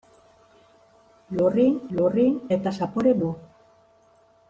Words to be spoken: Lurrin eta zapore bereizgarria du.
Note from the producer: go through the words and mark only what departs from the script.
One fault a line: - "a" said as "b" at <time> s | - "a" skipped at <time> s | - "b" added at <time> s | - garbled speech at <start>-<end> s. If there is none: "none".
- "lurrin" added at 2.0 s
- "bereizgarria" skipped at 3.1 s